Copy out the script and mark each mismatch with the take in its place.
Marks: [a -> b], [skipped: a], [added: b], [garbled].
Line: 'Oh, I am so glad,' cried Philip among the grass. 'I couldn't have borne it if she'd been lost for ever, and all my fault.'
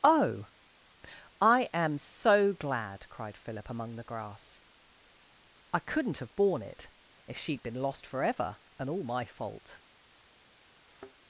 'Oh, I am so glad,' cried Philip among the grass. 'I couldn't have borne it if she'd been lost for ever, and all my fault.'